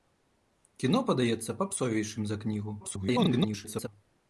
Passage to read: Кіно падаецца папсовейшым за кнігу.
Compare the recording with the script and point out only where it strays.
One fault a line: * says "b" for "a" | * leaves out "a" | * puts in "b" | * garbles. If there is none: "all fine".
* garbles